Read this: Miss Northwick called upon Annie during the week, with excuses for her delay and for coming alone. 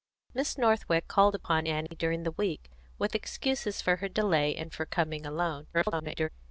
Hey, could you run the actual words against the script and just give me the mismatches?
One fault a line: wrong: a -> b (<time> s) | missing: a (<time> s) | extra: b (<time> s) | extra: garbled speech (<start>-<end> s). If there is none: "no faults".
extra: garbled speech (5.7-6.3 s)